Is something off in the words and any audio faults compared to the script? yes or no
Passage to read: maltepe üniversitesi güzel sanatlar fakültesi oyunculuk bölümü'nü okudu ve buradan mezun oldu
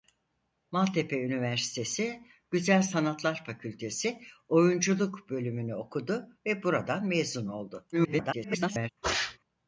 yes